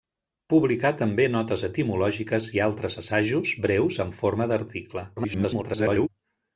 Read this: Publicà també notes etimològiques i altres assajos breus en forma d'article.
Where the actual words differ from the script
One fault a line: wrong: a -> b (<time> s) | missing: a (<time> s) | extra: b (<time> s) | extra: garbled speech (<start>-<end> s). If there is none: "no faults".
extra: garbled speech (5.2-6.1 s)